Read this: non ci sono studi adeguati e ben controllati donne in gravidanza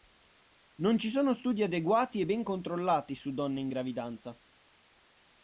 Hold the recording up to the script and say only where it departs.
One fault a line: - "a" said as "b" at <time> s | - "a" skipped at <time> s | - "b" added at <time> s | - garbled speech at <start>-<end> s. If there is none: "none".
- "su" added at 3.2 s